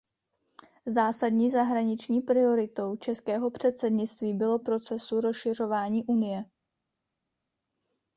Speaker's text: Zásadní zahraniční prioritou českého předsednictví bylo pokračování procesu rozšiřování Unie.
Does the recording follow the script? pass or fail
fail